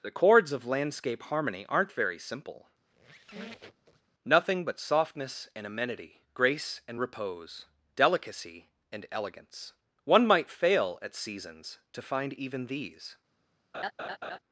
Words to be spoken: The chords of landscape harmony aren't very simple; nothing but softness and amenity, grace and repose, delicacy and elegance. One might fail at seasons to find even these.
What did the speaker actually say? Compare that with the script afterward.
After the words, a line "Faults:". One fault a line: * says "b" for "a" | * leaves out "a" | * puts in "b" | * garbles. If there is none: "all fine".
The chords of landscape harmony aren't very simple; nothing but softness and amenity, grace and repose, delicacy and elegance. One might fail at seasons to find even these.
Faults:
all fine